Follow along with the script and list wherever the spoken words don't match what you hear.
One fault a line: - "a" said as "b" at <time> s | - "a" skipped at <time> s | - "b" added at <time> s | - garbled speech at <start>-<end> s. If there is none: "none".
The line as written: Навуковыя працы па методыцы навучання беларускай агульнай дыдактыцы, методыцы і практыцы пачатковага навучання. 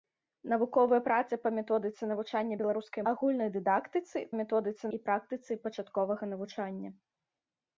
none